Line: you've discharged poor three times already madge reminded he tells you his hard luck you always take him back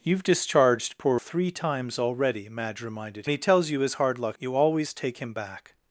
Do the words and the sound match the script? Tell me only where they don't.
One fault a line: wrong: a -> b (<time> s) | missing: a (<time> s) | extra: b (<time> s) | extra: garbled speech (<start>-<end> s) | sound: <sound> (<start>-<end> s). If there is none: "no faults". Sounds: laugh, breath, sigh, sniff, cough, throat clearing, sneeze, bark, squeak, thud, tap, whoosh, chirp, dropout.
no faults